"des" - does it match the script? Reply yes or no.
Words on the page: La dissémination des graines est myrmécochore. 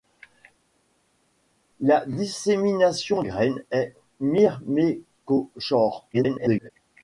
no